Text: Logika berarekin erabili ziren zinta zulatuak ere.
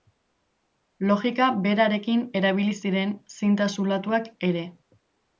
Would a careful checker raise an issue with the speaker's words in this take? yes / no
no